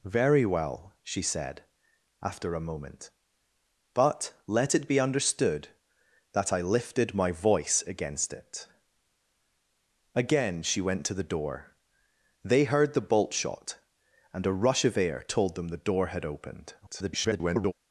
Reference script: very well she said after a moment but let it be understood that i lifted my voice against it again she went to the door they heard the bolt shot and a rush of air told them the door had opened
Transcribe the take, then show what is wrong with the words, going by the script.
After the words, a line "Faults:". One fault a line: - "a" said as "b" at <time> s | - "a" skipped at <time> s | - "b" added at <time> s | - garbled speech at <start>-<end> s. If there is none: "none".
very well she said after a moment but let it be understood that i lifted my voice against it again she went to the door they heard the bolt shot and a rush of air told them the door had opened [garbled]
Faults:
- garbled speech at 16.8-17.7 s